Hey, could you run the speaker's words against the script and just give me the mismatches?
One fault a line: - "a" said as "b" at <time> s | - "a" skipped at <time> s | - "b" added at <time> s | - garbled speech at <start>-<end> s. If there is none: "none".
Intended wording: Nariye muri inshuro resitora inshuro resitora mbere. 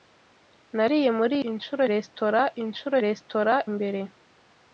none